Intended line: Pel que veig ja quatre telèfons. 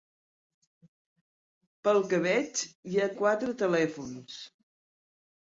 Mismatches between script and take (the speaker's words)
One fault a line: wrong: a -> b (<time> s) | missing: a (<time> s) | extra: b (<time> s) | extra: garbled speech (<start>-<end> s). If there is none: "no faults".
no faults